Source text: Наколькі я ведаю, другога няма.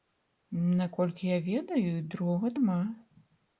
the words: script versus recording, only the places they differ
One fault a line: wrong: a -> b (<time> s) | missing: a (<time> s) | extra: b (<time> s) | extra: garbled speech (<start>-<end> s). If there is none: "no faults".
no faults